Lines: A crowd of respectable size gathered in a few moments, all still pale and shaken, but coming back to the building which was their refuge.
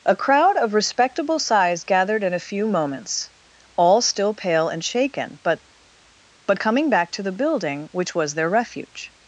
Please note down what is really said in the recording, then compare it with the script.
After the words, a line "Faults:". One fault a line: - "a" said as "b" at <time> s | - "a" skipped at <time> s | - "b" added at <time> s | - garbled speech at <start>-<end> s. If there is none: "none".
A crowd of respectable size gathered in a few moments, all still pale and shaken, but but coming back to the building which was their refuge.
Faults:
- "but" added at 6.5 s